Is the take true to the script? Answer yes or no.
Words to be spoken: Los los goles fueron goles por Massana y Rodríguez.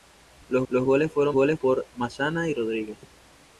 yes